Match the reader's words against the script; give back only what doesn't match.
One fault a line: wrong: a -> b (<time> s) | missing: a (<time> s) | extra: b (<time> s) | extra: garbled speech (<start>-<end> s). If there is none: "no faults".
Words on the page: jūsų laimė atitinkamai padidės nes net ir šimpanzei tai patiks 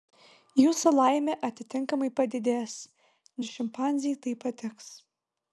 missing: nes net (2.8 s)